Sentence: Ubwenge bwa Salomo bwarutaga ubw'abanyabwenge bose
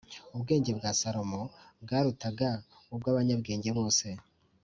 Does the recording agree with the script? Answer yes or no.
yes